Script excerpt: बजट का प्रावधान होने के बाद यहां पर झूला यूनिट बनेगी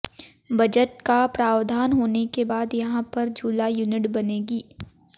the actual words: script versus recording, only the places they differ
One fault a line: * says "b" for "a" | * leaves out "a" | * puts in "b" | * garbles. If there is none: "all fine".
all fine